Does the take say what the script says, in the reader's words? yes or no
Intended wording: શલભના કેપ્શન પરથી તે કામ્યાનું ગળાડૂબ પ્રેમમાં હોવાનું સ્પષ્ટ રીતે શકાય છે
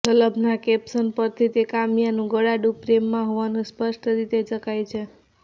yes